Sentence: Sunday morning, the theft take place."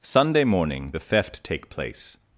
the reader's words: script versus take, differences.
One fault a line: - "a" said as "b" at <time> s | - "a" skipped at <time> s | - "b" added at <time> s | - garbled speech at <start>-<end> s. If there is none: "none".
none